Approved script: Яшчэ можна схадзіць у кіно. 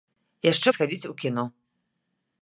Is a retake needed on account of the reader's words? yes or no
yes